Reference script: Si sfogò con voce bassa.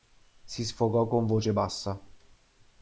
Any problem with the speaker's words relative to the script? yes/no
no